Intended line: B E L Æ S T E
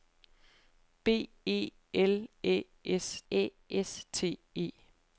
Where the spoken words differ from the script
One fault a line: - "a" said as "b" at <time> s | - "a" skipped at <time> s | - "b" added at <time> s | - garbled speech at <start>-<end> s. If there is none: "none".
- "Æ S" added at 3.3 s